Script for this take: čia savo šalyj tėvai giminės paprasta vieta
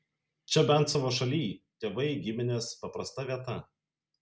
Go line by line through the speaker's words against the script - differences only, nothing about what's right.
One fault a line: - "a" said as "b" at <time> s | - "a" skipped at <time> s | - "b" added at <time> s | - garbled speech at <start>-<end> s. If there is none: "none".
- "bent" added at 0.7 s